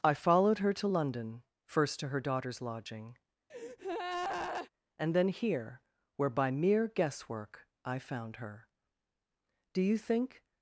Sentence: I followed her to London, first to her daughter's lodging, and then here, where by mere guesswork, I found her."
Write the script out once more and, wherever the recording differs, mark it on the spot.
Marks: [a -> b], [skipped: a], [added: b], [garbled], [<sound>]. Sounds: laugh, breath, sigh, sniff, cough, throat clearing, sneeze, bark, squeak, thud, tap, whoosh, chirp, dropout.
I followed her to London, first to her daughter's lodging, [breath] and then here, where by mere guesswork, I found her." [added: Do you think]